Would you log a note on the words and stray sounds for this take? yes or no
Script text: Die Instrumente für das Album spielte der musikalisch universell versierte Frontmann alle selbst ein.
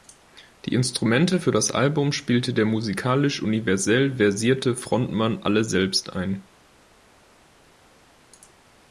no